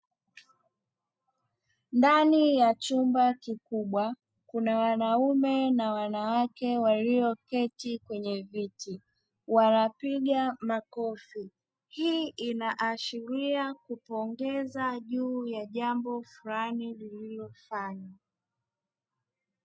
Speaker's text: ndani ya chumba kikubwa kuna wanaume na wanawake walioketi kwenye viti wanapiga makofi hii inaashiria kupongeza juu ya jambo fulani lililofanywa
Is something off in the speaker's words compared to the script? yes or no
no